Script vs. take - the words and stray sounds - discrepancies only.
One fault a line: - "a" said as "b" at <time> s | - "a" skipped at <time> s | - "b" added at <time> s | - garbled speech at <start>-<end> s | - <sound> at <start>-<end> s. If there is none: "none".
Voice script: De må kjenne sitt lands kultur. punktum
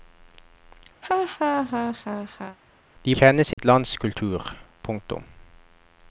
- laugh at 1.0-2.6 s
- "må" skipped at 3.1 s
- dropout at 3.5-3.6 s